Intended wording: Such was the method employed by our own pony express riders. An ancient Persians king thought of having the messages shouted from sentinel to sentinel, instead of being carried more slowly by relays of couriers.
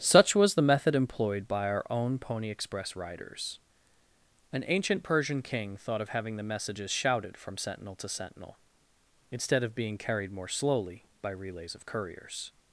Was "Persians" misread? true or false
true